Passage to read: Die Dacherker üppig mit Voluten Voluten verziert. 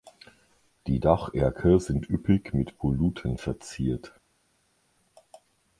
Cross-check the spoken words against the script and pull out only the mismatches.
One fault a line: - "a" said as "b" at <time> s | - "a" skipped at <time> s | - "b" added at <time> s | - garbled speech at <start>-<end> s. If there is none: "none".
- "sind" added at 1.8 s
- "Voluten" skipped at 3.4 s